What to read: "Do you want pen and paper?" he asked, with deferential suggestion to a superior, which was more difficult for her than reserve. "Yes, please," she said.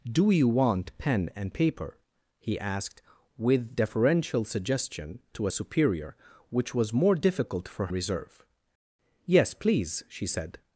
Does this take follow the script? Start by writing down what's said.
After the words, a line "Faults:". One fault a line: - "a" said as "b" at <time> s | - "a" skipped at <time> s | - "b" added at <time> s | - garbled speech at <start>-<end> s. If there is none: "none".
"Do you want pen and paper?" he asked, with deferential suggestion to a superior, which was more difficult for reserve. "Yes, please," she said.
Faults:
- "her than" skipped at 7.9 s